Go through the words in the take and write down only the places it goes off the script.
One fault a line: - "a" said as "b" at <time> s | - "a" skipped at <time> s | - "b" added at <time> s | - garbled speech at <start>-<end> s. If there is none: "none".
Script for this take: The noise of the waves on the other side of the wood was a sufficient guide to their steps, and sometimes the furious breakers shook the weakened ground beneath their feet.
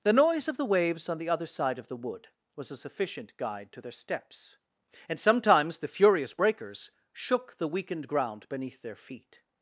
none